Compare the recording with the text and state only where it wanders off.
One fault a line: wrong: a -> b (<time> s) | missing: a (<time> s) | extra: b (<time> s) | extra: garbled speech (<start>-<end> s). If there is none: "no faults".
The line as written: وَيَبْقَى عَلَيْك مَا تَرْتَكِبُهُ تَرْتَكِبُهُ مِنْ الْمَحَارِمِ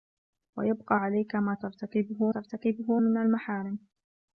no faults